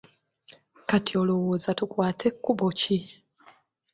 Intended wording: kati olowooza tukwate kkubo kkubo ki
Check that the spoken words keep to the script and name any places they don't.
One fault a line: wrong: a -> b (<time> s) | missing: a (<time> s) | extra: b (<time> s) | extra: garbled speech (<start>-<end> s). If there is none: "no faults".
missing: kkubo (2.7 s)